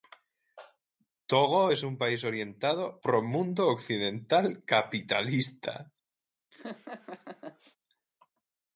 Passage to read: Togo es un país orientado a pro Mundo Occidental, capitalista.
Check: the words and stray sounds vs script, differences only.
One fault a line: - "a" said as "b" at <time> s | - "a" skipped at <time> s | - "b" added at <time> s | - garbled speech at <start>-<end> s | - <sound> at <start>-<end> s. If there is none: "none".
- "a" skipped at 3.0 s
- laugh at 6.5-7.8 s